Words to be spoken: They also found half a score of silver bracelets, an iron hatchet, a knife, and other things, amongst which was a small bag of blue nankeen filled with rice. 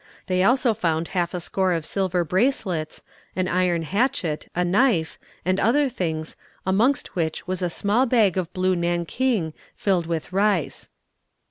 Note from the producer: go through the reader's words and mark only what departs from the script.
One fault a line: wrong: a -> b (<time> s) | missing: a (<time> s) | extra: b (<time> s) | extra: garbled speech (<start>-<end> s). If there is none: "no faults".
no faults